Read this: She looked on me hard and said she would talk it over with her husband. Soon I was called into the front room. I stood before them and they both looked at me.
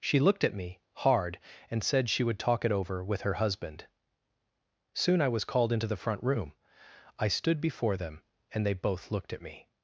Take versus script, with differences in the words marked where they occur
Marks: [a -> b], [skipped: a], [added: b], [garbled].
She looked [on -> at] me hard and said she would talk it over with her husband. Soon I was called into the front room. I stood before them and they both looked at me.